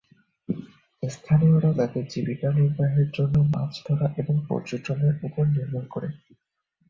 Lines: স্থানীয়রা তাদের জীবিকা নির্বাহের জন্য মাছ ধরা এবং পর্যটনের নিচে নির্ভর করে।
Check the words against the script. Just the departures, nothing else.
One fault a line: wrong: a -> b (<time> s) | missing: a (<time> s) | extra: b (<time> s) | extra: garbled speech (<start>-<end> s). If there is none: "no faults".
wrong: নিচে -> উপর (5.2 s)